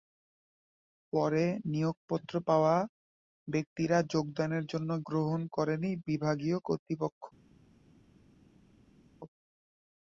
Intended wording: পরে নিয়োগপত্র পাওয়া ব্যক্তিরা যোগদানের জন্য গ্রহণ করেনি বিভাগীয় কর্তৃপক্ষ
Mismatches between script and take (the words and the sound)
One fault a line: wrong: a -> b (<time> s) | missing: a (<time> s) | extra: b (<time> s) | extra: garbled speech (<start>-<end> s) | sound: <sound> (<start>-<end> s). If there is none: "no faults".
no faults